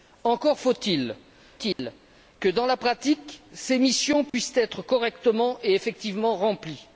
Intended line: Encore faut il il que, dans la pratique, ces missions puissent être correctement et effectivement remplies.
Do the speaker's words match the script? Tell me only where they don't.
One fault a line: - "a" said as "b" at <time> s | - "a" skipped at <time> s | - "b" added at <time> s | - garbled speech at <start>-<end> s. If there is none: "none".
none